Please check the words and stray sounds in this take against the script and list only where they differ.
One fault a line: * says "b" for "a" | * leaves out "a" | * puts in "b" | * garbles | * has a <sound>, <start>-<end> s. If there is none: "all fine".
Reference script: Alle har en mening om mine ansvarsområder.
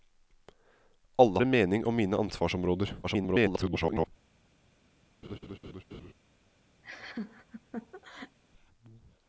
* leaves out "har"
* garbles
* has a laugh, 5.2-6.1 s
* has a laugh, 6.8-8.4 s